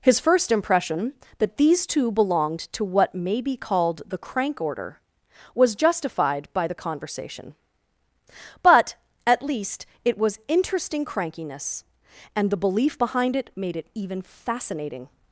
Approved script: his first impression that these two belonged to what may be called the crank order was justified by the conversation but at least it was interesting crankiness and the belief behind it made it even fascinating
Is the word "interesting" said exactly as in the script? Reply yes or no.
yes